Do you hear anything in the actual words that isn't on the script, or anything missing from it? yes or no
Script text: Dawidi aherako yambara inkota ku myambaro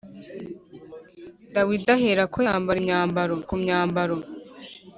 yes